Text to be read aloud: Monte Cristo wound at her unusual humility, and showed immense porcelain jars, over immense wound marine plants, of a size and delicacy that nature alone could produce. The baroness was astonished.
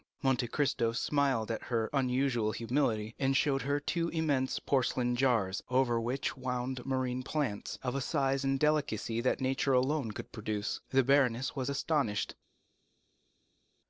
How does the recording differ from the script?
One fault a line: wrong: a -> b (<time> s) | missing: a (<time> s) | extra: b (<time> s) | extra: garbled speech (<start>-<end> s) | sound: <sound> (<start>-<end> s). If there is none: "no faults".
wrong: wound -> smiled (0.9 s)
extra: her two (3.6 s)
wrong: immense -> which (6.0 s)